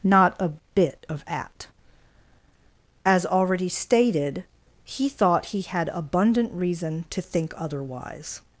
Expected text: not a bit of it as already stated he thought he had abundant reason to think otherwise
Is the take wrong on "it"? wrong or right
wrong